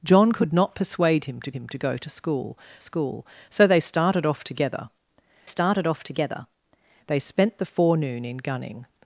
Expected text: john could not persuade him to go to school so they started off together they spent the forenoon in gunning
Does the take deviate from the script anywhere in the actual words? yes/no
yes